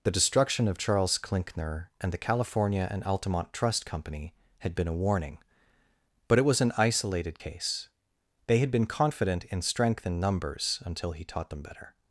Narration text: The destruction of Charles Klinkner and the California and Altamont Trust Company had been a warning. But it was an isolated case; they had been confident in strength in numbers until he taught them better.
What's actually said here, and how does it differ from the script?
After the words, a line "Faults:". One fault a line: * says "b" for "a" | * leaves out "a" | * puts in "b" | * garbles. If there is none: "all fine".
The destruction of Charles Klinkner and the California and Altamont Trust Company had been a warning. But it was an isolated case; they had been confident in strength in numbers until he taught them better.
Faults:
all fine